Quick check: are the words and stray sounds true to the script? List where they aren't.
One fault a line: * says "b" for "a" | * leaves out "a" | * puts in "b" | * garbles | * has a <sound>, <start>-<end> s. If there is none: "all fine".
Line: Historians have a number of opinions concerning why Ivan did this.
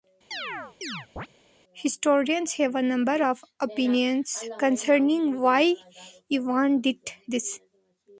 * has a chirp, 0.3-1.3 s